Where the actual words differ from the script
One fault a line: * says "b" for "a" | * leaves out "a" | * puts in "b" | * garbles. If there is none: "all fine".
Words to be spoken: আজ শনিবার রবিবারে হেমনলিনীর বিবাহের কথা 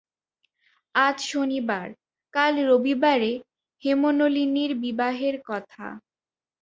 * puts in "কাল"